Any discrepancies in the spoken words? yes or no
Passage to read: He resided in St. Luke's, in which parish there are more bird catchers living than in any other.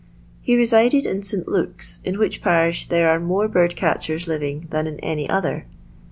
no